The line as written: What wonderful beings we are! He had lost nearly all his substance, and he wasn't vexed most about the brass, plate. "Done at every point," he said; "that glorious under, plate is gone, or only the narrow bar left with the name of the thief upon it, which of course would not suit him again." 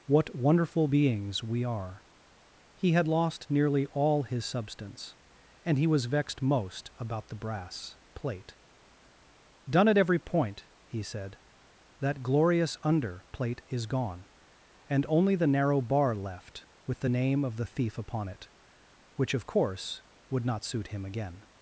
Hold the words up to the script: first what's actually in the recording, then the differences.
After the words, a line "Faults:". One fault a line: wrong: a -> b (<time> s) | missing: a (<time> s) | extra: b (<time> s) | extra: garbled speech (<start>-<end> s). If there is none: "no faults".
What wonderful beings we are! He had lost nearly all his substance, and he was vexed most about the brass, plate. "Done at every point," he said; "that glorious under, plate is gone, and only the narrow bar left with the name of the thief upon it, which of course would not suit him again."
Faults:
wrong: wasn't -> was (5.9 s)
wrong: or -> and (14.9 s)